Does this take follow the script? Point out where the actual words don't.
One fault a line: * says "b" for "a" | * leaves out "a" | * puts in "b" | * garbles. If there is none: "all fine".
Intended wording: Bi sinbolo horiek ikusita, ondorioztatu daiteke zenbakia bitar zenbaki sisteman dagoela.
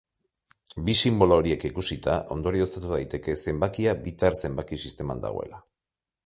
all fine